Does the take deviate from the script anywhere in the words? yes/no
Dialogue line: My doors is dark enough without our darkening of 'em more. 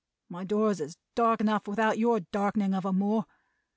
yes